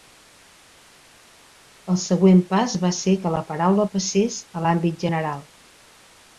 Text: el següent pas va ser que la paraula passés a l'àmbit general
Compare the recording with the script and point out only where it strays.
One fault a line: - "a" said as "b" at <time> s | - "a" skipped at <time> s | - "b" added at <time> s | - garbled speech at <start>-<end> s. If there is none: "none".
none